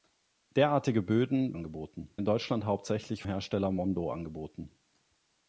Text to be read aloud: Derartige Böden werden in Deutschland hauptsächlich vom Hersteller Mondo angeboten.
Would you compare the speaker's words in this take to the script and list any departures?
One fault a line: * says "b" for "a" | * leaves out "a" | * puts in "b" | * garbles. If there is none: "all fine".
* says "angeboten" for "werden"
* leaves out "vom"